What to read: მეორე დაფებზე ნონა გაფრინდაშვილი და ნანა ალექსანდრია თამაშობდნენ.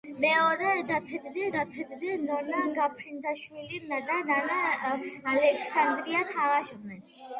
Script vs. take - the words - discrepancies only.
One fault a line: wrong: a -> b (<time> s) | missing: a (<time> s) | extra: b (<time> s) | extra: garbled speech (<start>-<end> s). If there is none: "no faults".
extra: დაფებზე (1.5 s)